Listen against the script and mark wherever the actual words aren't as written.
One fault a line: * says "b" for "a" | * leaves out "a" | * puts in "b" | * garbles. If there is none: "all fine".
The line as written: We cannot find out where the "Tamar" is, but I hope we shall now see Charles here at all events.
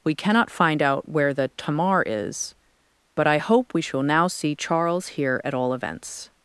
all fine